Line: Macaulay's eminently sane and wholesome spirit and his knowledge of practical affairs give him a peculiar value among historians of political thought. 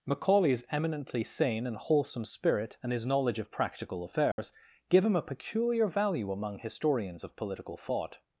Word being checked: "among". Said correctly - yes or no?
yes